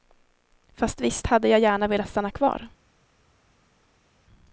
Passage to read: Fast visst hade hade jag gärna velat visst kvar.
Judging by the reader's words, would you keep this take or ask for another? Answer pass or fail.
fail